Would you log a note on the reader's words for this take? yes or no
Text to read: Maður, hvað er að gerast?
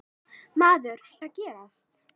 yes